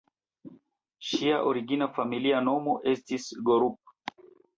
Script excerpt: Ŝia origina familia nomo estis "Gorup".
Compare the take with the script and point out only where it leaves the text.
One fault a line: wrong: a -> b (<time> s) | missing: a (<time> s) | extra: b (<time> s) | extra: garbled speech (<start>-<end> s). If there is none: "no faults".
no faults